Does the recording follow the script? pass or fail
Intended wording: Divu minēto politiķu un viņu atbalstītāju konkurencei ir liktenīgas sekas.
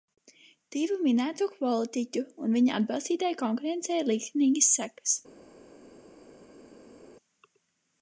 pass